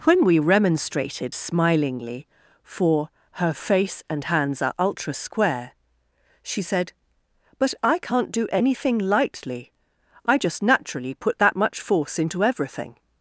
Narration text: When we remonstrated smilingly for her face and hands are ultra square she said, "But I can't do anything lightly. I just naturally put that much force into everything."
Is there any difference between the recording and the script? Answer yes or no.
no